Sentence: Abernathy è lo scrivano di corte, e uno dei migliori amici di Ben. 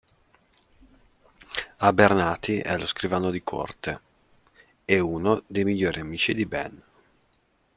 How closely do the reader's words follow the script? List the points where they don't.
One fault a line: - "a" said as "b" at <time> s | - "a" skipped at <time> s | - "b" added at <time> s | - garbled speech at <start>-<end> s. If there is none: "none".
none